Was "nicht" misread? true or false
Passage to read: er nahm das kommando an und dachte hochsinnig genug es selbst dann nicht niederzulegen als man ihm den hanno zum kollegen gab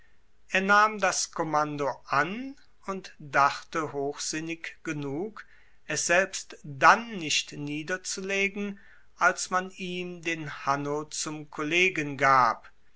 false